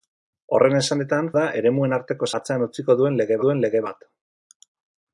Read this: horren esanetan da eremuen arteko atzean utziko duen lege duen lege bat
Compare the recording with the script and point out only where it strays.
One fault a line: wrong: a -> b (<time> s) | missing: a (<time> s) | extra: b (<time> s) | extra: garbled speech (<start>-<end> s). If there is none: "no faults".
no faults